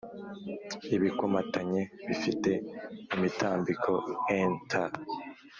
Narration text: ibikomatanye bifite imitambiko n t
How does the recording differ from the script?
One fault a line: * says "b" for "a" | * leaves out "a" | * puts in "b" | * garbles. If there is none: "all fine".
all fine